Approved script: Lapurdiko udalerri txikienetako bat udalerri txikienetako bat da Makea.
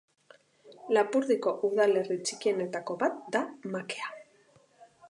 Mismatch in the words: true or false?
true